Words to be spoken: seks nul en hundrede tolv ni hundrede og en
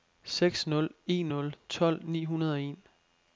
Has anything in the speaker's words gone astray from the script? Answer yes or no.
yes